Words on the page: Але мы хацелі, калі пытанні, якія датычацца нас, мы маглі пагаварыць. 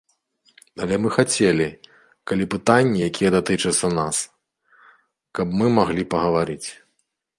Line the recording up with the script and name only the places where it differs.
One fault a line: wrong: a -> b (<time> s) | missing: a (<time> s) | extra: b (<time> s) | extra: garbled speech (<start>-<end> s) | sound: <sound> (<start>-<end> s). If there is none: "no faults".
extra: каб (5.4 s)